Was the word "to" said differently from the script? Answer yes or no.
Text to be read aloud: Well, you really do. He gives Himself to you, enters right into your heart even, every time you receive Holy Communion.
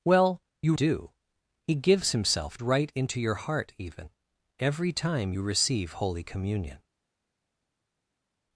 yes